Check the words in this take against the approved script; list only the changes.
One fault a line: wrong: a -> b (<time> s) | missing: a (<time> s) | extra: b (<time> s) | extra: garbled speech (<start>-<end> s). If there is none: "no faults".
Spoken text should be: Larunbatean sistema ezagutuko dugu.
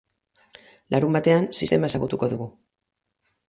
no faults